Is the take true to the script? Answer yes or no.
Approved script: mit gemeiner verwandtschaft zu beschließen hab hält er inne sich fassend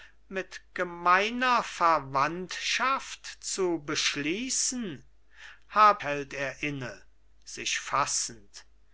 yes